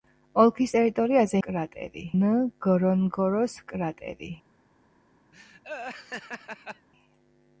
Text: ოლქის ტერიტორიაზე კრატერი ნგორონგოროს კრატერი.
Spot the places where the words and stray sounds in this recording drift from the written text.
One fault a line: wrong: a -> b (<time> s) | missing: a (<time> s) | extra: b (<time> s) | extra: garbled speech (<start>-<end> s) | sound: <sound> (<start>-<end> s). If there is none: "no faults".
sound: laugh (5.3-6.9 s)